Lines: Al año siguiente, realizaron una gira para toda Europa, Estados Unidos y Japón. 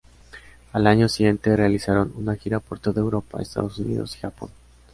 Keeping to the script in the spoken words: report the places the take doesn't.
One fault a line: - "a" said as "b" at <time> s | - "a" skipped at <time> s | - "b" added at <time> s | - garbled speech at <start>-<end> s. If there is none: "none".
- "para" said as "por" at 2.6 s